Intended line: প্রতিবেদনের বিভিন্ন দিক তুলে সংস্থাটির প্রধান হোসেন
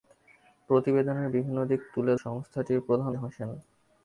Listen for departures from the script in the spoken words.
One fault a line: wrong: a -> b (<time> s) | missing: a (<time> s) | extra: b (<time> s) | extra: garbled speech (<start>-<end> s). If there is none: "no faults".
no faults